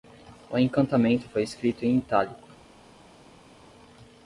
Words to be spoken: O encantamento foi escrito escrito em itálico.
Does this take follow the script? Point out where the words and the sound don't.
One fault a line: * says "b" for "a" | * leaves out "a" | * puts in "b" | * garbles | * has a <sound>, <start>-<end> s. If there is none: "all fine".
* leaves out "escrito"